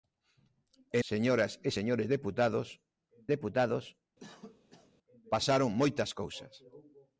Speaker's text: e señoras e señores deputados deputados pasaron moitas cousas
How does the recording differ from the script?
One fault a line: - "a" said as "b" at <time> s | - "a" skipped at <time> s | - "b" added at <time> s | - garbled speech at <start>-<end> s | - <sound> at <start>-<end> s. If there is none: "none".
- cough at 4.2-4.9 s